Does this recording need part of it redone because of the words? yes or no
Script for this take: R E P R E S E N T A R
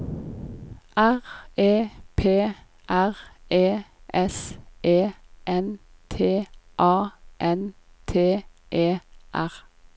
yes